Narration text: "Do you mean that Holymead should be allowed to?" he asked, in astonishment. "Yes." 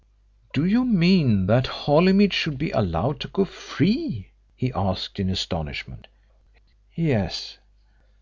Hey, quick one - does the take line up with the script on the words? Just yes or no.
no